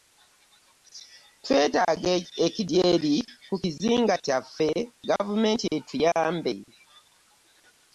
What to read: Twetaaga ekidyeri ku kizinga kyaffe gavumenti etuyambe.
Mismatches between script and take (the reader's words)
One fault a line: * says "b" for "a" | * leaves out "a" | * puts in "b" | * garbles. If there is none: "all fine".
all fine